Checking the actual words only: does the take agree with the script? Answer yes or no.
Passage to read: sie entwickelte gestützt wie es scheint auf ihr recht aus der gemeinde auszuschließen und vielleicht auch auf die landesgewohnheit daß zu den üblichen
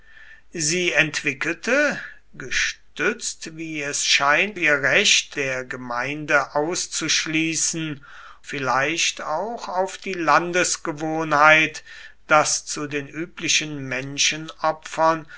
no